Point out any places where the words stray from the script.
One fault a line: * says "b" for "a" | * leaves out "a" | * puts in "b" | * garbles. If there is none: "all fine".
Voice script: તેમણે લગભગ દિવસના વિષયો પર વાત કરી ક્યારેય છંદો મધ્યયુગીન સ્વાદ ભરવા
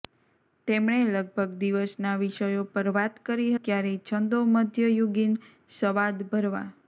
all fine